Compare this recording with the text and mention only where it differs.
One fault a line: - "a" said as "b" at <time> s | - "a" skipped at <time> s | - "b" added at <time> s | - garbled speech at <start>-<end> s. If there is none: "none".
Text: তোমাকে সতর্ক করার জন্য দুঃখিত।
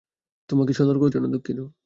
- "করার" skipped at 1.0 s